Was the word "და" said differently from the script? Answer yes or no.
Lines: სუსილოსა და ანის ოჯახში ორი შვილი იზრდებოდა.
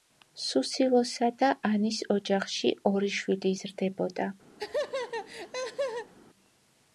no